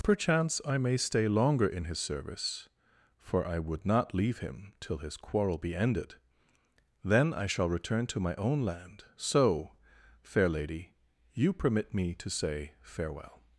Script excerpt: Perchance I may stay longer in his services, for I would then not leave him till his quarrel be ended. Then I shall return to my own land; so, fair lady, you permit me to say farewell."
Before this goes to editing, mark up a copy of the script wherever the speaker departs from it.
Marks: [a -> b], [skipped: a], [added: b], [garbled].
Perchance I may stay longer in his [services, -> service] for I would [skipped: then] not leave him till his quarrel be ended. Then I shall return to my own land; so, fair lady, you permit me to say farewell."